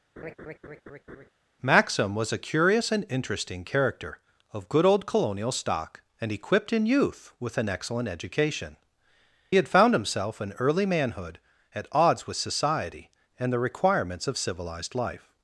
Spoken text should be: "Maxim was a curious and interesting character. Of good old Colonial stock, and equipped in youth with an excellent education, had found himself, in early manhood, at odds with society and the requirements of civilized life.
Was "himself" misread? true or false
false